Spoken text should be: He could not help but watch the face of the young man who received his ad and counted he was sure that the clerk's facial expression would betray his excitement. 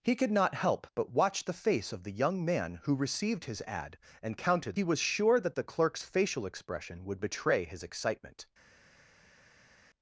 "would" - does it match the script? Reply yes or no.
yes